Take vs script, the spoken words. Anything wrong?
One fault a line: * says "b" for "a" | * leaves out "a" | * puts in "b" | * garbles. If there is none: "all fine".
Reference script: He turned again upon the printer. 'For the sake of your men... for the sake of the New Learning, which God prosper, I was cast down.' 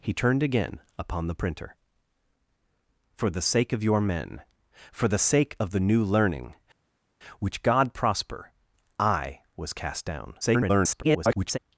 * garbles